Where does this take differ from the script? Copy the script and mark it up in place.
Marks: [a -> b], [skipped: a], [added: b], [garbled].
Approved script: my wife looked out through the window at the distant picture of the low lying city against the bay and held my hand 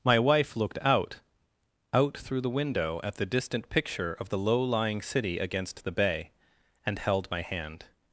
my wife looked out [added: out] through the window at the distant picture of the low lying city against the bay and held my hand